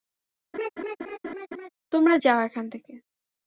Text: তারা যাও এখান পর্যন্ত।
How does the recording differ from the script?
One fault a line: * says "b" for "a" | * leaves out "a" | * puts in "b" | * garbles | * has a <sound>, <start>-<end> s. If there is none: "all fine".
* has a laugh, 0.5-1.7 s
* says "তোমরা" for "তারা"
* says "থেকে" for "পর্যন্ত"